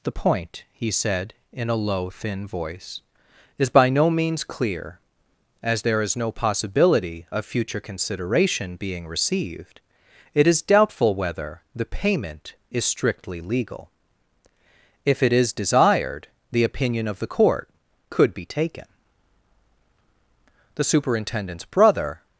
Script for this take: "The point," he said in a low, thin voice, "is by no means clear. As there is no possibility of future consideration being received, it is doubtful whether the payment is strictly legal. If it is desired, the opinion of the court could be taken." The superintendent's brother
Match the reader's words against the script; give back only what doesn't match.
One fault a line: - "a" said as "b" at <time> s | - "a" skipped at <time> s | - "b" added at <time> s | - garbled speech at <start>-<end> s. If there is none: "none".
none